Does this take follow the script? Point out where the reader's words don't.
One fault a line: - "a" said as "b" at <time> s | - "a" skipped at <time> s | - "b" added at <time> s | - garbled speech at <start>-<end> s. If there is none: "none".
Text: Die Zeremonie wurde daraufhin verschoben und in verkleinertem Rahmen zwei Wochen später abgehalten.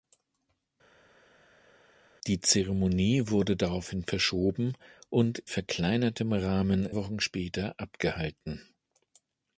- "in" skipped at 5.4 s
- "zwei" skipped at 6.9 s